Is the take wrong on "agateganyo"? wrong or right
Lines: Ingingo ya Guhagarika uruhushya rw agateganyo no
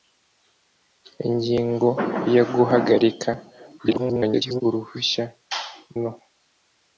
wrong